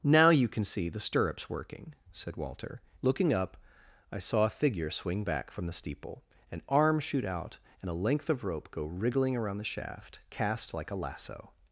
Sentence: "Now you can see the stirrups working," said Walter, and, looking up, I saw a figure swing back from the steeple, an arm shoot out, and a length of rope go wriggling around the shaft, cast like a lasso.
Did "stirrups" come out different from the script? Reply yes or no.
no